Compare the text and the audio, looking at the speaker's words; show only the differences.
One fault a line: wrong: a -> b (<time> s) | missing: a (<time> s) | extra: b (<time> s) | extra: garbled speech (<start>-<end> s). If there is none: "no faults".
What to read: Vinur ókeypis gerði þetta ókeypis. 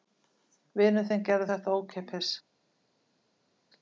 wrong: ókeypis -> þinn (1.1 s)